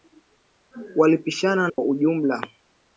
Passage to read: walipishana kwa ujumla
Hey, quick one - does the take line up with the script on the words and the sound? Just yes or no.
no